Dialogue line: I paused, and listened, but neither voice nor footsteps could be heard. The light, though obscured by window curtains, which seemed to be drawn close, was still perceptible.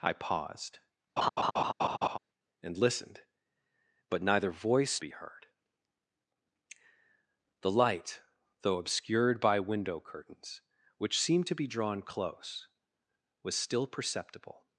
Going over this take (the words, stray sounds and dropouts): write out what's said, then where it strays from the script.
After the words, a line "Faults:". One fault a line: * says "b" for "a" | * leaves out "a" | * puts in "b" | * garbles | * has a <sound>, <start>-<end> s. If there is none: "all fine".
I paused, and listened, but neither voice be heard. The light, though obscured by window curtains, which seemed to be drawn close, was still perceptible.
Faults:
* has a laugh, 1.2-2.2 s
* leaves out "nor footsteps could"